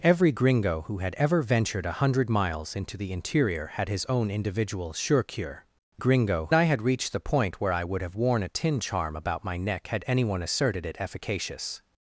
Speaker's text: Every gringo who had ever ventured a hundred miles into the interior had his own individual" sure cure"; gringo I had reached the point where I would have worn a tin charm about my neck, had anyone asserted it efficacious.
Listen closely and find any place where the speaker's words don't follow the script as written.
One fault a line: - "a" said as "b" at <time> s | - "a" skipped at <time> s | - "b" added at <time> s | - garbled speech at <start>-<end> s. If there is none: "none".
none